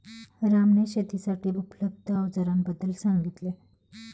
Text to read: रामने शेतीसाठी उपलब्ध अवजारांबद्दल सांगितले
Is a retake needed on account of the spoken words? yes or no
no